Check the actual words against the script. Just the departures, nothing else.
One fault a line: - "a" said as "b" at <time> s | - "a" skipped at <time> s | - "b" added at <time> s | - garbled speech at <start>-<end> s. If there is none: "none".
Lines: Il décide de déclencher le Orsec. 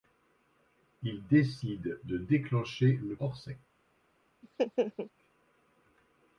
none